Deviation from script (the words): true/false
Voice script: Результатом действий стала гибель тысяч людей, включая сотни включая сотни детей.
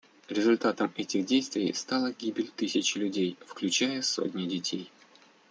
true